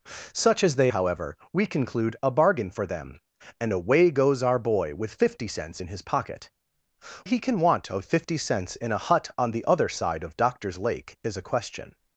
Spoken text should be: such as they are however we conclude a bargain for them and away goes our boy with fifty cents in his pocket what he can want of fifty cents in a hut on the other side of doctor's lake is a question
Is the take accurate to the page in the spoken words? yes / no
no